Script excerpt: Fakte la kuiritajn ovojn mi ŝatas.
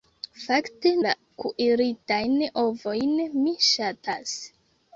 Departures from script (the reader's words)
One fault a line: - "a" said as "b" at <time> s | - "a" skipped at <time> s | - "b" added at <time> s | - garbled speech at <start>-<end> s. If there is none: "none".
none